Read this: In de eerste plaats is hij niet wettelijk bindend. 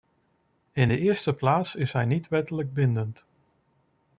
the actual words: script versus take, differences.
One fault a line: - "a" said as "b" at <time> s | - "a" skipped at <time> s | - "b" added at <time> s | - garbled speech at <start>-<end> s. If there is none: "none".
none